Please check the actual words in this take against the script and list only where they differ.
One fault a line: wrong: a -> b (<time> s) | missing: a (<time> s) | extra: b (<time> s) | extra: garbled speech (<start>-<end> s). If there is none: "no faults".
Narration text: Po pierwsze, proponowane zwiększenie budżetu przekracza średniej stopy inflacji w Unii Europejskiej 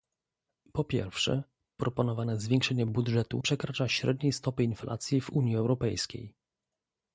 no faults